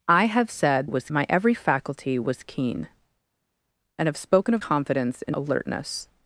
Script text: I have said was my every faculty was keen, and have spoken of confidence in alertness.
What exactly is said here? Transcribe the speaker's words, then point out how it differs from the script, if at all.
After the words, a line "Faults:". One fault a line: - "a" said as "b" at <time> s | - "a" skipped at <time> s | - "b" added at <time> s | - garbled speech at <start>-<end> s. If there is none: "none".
I have said was my every faculty was keen, and have spoken of confidence in alertness.
Faults:
none